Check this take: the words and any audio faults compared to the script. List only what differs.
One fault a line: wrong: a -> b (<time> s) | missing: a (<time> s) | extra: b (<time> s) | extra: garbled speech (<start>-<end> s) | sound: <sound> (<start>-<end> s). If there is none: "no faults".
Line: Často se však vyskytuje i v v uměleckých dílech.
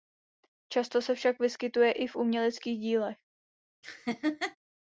missing: v (2.2 s)
sound: laugh (3.8-4.6 s)